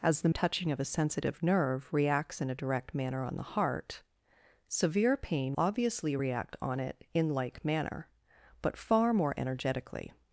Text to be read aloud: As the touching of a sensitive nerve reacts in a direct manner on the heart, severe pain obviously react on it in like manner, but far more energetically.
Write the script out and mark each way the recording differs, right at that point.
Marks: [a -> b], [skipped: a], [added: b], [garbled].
As the touching of a sensitive nerve reacts in a direct manner on the heart, severe pain obviously react on it in like manner, but far more energetically.